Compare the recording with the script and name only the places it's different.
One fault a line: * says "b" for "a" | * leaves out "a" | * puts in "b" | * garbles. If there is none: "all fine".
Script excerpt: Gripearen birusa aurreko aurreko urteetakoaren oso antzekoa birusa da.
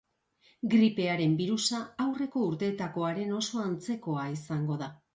* leaves out "aurreko"
* says "izango" for "birusa"